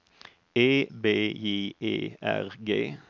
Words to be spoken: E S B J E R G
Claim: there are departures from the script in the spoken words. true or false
true